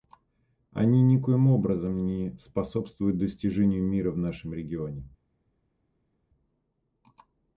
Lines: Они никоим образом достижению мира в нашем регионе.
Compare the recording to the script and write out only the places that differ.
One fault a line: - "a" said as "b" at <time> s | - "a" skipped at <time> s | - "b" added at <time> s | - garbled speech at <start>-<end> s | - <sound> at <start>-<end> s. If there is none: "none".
- "не способствуют" added at 2.0 s